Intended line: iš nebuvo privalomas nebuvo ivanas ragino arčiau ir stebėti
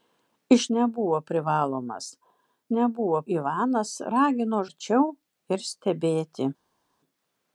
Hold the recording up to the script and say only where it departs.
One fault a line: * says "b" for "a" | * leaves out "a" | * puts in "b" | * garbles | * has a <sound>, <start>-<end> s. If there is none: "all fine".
all fine